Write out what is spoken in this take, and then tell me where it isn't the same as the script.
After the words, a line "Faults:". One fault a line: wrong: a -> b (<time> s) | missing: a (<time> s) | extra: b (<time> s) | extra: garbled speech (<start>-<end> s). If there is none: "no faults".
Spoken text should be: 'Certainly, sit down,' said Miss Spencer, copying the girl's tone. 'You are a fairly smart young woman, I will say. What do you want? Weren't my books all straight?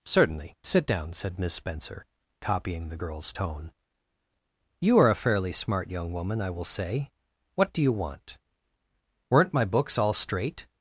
'Certainly, sit down,' said Miss Spencer, copying the girl's tone. 'You are a fairly smart young woman, I will say. What do you want? Weren't my books all straight?
Faults:
no faults